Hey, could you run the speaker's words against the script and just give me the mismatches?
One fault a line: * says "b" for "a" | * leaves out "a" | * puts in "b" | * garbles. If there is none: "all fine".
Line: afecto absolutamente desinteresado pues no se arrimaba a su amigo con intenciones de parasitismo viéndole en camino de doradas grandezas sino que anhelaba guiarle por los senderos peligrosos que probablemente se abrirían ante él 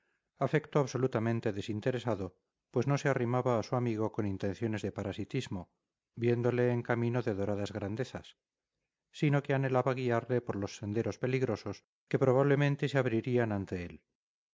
all fine